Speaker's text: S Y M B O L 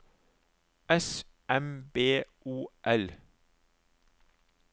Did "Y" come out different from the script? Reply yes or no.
yes